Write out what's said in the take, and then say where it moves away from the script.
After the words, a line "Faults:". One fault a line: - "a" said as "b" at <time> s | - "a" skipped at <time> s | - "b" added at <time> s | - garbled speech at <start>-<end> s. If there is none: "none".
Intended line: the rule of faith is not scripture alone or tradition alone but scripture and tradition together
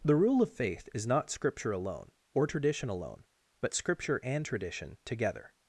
the rule of faith is not scripture alone or tradition alone but scripture and tradition together
Faults:
none